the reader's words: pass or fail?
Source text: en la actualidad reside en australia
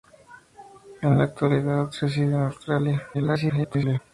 fail